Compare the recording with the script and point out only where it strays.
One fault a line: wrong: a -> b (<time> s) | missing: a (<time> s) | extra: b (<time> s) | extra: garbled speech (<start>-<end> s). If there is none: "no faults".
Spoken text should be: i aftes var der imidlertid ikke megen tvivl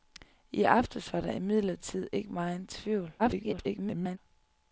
extra: garbled speech (3.2-4.2 s)